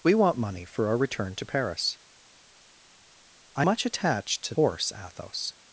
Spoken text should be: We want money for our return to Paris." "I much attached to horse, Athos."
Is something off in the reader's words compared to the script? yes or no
no